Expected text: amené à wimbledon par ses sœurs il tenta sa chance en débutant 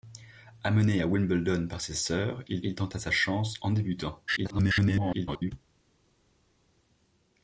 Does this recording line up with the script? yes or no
no